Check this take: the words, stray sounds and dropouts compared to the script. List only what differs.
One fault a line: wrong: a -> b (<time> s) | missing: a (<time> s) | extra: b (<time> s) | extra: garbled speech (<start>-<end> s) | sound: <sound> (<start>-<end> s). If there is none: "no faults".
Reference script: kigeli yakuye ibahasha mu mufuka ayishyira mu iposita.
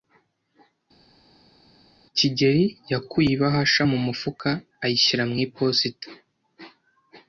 no faults